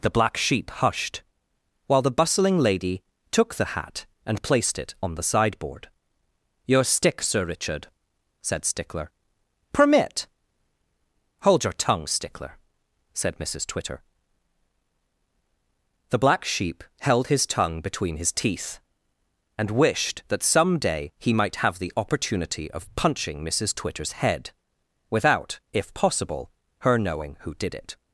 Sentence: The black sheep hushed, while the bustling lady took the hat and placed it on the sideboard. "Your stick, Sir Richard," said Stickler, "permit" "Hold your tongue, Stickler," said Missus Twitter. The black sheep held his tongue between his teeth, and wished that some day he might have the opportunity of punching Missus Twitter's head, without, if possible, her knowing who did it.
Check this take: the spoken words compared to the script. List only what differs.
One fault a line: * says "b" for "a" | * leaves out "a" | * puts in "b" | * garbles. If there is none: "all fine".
all fine